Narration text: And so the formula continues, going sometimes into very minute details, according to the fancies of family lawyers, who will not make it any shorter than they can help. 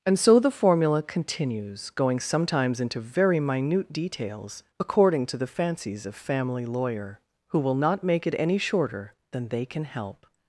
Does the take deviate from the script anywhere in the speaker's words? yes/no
yes